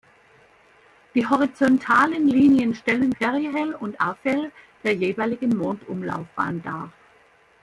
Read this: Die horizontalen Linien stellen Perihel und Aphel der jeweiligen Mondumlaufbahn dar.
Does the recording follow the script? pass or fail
pass